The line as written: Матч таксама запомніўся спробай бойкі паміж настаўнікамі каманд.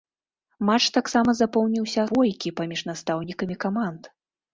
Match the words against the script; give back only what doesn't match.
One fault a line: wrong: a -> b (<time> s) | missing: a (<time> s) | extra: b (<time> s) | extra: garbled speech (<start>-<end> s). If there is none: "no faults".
missing: спробай (2.0 s)